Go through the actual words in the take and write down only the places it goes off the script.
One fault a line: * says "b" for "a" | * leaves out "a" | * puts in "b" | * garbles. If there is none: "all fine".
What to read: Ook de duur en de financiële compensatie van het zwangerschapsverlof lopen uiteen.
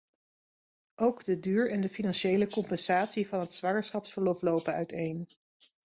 all fine